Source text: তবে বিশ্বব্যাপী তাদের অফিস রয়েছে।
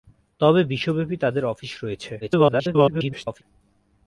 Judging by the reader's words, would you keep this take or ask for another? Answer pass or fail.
fail